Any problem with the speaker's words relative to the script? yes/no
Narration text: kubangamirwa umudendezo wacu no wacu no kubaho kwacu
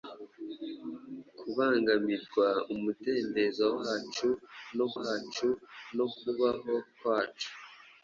no